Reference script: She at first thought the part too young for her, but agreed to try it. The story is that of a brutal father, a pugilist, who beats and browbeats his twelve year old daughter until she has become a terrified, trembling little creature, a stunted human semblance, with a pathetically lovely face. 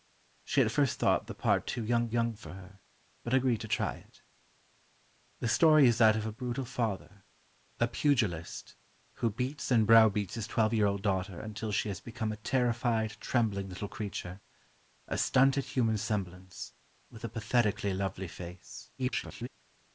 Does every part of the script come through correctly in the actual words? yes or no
no